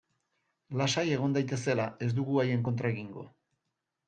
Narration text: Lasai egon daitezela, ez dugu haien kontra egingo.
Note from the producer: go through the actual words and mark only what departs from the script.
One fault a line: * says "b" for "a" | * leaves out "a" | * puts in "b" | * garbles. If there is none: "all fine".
all fine